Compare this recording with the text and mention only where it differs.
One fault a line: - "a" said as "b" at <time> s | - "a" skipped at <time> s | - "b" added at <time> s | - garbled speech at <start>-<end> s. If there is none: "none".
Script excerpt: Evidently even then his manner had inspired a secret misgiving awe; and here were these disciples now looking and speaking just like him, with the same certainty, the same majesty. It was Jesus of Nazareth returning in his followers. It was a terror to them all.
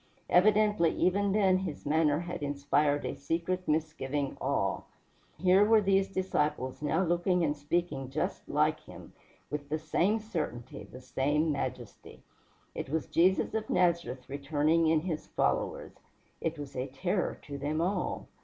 - "and" skipped at 4.8 s